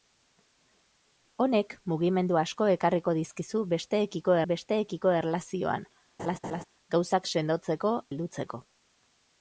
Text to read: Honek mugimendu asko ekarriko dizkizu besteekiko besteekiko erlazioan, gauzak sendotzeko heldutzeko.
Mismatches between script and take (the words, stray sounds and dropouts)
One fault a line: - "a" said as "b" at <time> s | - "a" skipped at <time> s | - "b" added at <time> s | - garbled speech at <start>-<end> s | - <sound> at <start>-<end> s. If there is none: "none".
- laugh at 6.2-6.6 s